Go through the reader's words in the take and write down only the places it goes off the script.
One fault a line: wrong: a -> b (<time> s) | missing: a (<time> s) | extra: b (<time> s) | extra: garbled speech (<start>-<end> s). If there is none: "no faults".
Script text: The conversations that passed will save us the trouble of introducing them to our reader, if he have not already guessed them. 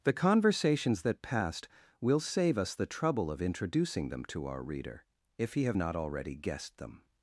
no faults